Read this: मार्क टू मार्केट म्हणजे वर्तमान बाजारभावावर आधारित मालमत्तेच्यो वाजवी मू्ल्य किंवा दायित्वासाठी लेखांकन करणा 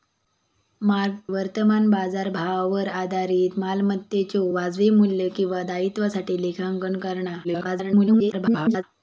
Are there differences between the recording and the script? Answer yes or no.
yes